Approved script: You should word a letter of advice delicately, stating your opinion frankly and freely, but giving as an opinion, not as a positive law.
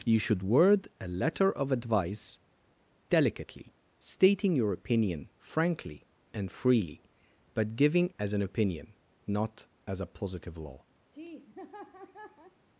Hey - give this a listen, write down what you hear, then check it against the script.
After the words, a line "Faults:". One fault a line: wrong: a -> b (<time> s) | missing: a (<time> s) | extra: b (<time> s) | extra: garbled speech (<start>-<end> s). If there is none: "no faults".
You should word a letter of advice delicately, stating your opinion frankly and freely, but giving as an opinion, not as a positive law.
Faults:
no faults